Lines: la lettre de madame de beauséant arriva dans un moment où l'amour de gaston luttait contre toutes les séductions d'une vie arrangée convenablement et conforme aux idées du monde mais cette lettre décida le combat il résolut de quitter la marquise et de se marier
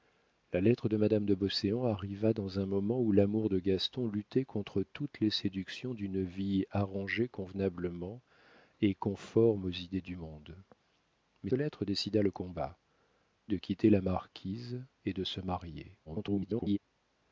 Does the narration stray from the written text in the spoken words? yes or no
yes